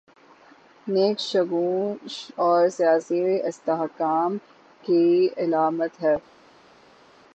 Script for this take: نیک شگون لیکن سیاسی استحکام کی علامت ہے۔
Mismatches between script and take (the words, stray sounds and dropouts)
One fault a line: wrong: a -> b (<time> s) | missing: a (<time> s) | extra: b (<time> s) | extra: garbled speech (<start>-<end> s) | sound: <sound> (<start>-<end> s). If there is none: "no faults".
wrong: لیکن -> اور (2.3 s)